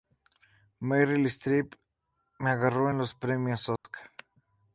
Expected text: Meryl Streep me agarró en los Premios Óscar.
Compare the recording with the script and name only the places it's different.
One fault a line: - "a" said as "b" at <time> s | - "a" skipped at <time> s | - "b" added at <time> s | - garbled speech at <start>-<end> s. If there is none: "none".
none